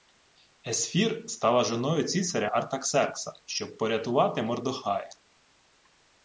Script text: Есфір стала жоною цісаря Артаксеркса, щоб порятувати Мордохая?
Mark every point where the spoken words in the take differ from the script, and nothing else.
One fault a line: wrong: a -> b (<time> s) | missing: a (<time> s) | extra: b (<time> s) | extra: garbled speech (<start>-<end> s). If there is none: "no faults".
no faults